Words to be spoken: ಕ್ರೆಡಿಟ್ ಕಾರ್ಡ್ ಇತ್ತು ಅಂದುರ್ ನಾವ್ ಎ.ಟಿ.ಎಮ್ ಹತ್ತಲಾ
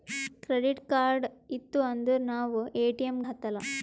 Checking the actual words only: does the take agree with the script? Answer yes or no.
yes